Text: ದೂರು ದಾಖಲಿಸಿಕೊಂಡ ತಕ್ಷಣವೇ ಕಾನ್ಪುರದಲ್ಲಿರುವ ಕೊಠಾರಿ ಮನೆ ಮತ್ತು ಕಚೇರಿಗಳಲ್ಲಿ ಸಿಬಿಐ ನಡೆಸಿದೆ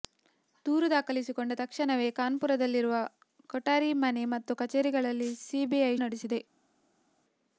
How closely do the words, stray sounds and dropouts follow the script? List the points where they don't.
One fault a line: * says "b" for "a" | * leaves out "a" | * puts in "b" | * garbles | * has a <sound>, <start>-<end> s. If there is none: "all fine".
all fine